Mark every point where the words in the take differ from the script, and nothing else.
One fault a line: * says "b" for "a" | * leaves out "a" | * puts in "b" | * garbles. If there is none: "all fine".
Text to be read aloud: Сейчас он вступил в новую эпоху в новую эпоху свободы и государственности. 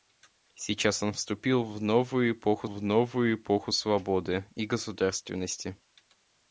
all fine